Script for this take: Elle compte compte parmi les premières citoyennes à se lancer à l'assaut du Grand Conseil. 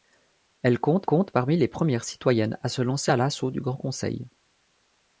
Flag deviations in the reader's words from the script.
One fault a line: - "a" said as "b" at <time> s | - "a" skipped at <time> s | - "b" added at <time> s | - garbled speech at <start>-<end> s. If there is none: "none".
none